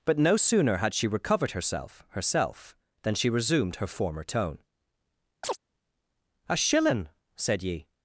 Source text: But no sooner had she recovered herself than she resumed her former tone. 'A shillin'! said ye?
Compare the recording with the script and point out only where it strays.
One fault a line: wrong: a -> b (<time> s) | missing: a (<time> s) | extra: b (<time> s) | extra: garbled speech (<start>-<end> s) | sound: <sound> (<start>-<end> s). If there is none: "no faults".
extra: herself (2.1 s)
sound: chirp (5.4-5.6 s)